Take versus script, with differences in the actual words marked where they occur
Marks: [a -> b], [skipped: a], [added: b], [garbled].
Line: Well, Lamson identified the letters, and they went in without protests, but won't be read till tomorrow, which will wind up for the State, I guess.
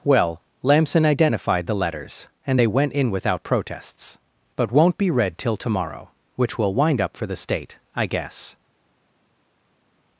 Well, Lamson identified the letters, and they went in without protests, but won't be read till tomorrow, which will wind up for the State, I guess.